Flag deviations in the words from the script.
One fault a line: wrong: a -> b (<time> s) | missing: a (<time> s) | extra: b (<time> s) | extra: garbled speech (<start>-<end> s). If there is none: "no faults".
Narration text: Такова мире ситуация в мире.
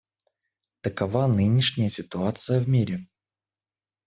wrong: мире -> нынешняя (1.3 s)